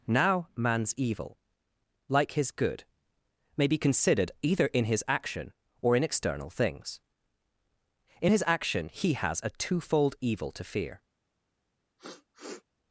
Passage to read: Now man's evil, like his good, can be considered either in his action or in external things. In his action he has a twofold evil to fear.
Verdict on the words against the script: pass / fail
fail